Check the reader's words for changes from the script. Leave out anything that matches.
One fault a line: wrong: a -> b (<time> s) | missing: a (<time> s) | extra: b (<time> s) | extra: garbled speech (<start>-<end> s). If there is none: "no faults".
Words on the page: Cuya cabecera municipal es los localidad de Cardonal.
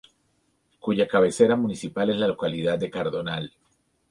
wrong: los -> la (2.2 s)